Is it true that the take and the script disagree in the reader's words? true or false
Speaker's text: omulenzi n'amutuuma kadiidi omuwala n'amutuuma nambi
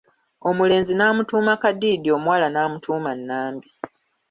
false